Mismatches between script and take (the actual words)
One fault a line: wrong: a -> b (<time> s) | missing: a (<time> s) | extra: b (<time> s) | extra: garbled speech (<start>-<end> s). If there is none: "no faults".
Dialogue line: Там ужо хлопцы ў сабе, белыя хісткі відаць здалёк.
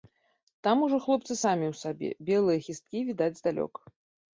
extra: самі (1.4 s)